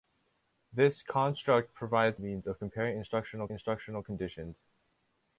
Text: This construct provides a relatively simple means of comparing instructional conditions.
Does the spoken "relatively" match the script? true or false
false